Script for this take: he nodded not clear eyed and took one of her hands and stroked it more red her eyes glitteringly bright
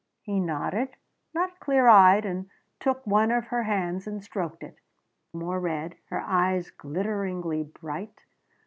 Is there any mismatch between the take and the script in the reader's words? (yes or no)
no